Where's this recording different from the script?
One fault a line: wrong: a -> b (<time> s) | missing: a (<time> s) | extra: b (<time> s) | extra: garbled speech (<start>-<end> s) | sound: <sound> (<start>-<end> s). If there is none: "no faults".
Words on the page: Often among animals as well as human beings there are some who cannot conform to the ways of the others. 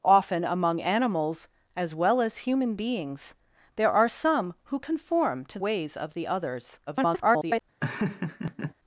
missing: cannot (4.8 s)
missing: the (5.6 s)
extra: garbled speech (6.9-7.6 s)
sound: laugh (7.8-8.7 s)